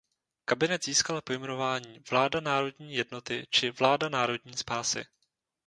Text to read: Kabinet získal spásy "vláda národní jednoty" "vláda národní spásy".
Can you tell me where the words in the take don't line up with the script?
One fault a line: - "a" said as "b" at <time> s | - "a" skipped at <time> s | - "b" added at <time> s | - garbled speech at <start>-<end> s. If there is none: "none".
- "spásy" said as "pojmenování" at 1.2 s
- "či" added at 3.5 s